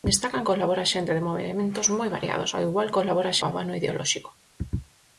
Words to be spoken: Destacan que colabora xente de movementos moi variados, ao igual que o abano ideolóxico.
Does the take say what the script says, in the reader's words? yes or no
no